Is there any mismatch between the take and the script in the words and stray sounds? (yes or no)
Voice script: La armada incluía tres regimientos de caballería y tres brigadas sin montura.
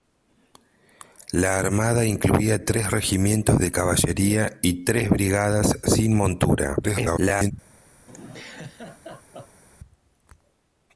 yes